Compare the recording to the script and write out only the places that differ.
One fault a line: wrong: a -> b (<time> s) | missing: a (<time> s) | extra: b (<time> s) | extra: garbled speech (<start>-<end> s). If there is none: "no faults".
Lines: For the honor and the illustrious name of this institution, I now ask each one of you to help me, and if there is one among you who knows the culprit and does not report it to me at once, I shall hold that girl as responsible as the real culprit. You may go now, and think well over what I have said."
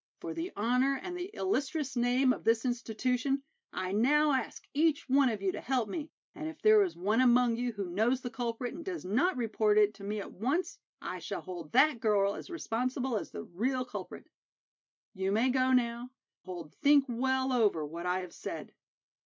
wrong: and -> hold (16.4 s)